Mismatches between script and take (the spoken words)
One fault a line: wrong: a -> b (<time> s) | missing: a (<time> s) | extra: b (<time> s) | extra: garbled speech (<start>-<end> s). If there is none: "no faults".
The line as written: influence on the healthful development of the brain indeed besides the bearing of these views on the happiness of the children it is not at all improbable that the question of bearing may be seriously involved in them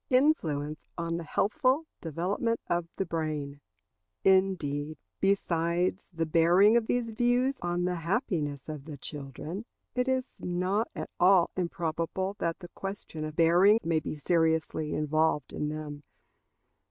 no faults